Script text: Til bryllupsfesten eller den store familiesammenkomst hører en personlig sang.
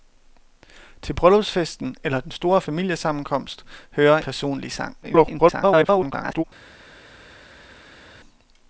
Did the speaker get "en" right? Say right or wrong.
wrong